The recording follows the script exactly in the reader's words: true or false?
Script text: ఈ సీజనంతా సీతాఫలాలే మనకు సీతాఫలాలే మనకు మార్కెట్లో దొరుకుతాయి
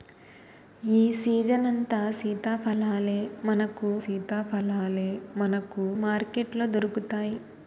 true